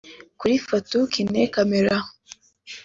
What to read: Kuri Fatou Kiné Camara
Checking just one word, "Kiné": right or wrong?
right